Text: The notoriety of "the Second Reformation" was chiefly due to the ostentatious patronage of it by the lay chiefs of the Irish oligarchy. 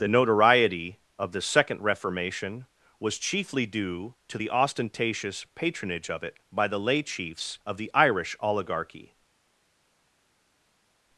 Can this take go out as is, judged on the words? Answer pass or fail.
pass